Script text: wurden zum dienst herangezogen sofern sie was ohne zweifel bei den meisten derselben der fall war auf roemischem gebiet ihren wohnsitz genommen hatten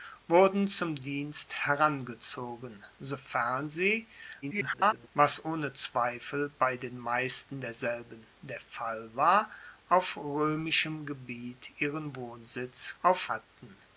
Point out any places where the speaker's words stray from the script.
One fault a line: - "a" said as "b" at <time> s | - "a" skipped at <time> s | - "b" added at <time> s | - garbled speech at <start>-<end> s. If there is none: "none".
- garbled speech at 4.4-5.1 s
- "genommen" said as "auf" at 13.0 s